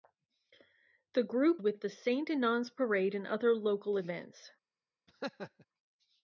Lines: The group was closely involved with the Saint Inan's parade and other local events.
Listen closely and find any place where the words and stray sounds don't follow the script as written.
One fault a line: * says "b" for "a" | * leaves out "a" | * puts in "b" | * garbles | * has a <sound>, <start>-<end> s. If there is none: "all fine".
* leaves out "was closely involved"
* has a laugh, 5.1-5.7 s